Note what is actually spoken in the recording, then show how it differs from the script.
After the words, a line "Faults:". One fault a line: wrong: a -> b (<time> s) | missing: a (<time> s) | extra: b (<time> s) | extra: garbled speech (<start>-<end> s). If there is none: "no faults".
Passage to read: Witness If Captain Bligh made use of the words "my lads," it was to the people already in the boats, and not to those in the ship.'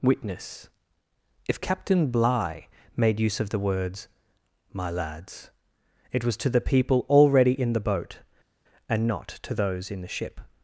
Witness If Captain Bligh made use of the words "my lads," it was to the people already in the boat, and not to those in the ship.'
Faults:
wrong: boats -> boat (7.8 s)